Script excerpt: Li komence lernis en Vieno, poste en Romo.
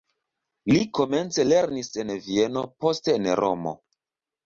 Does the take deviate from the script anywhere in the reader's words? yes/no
no